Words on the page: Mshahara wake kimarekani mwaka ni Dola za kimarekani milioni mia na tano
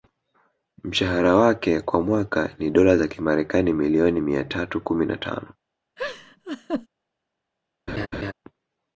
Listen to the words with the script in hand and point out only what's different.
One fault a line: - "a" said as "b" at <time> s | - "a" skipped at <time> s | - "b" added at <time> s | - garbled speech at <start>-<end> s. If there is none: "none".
- "kimarekani" said as "kwa" at 1.8 s
- "tatu kumi" added at 4.4 s